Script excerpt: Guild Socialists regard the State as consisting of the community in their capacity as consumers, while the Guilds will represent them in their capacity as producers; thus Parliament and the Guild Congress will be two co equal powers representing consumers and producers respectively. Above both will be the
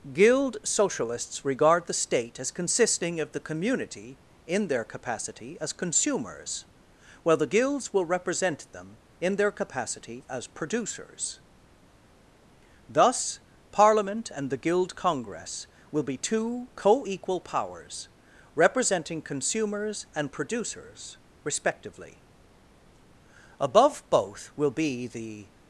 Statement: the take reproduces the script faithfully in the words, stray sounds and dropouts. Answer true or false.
true